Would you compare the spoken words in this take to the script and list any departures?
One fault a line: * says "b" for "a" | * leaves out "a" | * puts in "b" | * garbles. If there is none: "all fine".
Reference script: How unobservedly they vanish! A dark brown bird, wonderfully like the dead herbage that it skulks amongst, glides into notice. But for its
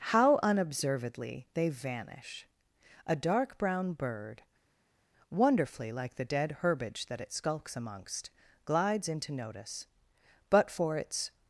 all fine